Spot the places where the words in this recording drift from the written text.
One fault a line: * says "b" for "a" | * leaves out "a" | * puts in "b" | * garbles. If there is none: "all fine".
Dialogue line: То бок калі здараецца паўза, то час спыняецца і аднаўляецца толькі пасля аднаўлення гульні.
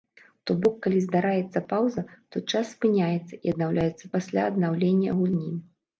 * leaves out "толькі"